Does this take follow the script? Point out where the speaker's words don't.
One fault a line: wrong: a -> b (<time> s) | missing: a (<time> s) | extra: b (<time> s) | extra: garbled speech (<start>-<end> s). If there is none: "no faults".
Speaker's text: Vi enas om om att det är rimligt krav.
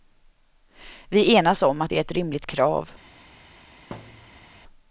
missing: om (1.8 s)
extra: ett (2.0 s)